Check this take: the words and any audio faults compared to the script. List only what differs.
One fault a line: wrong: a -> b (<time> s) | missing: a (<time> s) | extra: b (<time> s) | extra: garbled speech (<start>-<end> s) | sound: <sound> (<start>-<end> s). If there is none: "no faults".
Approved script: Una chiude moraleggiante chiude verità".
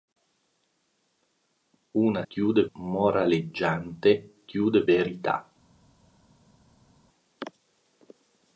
no faults